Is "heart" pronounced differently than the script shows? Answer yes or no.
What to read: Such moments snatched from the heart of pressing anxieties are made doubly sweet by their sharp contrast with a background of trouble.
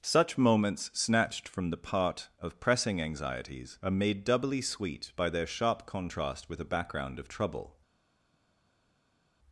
yes